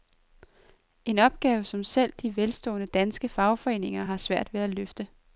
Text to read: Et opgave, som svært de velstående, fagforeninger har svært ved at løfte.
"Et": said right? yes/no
no